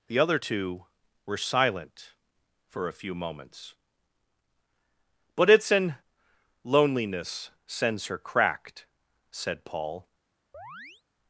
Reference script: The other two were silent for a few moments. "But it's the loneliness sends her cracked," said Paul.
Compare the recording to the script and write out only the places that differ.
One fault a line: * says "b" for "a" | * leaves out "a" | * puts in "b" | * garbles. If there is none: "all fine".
* says "an" for "the"